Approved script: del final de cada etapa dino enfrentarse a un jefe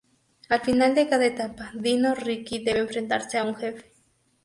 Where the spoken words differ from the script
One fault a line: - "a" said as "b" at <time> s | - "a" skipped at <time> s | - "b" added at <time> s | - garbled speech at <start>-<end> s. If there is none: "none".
- "del" said as "al" at 0.5 s
- "riki debe" added at 2.1 s